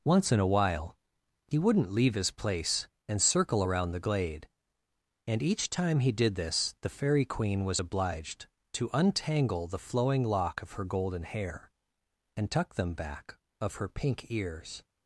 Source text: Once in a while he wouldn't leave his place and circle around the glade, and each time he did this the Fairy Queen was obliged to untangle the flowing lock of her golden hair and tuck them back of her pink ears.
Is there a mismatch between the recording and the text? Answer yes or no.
no